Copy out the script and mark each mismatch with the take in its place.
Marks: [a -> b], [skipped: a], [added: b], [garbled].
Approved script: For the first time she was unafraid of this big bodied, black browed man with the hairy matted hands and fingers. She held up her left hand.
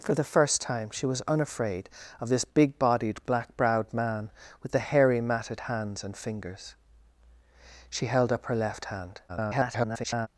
For the first time she was unafraid of this big bodied, black browed man with the hairy matted hands and fingers. She held up her left hand. [garbled]